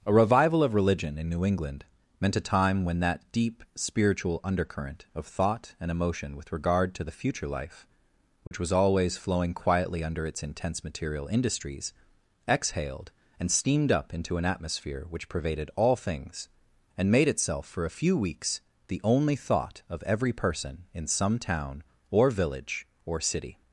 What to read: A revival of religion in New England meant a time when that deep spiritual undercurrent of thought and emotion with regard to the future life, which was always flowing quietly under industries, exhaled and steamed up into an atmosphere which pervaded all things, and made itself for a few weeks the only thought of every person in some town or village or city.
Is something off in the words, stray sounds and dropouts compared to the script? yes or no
yes